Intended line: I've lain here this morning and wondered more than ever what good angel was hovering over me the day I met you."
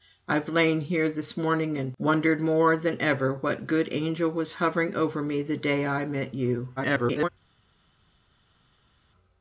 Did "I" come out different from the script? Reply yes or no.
no